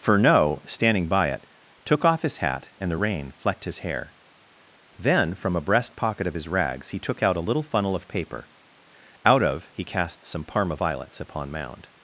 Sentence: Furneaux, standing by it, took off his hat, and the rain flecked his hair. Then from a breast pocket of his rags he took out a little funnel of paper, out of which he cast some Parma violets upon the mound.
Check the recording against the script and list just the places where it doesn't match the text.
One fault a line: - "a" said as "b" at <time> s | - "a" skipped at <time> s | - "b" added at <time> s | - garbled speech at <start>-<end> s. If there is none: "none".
- "which" skipped at 9.7 s
- "the" skipped at 11.5 s